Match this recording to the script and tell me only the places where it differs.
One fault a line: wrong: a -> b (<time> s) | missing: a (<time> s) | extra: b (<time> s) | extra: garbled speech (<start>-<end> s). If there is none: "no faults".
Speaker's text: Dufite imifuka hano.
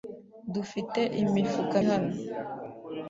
no faults